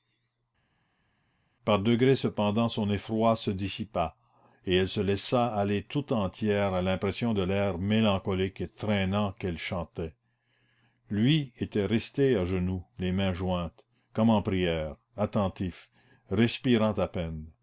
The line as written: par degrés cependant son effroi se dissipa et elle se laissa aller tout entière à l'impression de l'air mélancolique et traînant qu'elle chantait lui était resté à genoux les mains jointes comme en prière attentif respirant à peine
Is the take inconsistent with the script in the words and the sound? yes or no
no